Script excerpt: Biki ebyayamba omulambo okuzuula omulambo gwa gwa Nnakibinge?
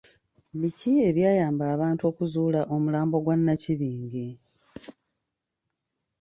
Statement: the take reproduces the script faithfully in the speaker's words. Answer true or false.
false